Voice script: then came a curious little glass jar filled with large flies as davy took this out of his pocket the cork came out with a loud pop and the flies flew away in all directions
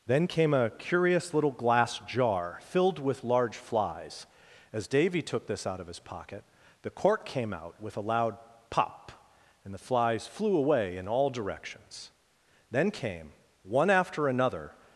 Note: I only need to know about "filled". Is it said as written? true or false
true